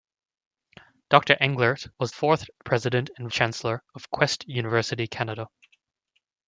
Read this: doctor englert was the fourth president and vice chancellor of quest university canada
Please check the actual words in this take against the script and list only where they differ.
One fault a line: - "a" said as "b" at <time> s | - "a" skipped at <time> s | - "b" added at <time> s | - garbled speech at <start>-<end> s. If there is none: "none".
- "the" skipped at 2.1 s
- "vice" skipped at 3.3 s